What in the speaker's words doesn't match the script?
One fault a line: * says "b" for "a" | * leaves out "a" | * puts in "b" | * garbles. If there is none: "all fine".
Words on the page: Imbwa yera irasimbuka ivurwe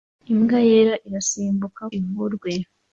all fine